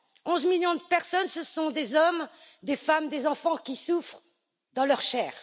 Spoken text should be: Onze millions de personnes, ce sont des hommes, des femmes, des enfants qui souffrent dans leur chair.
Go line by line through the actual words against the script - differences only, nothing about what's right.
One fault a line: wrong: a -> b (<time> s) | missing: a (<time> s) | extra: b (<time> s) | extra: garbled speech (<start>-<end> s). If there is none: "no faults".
no faults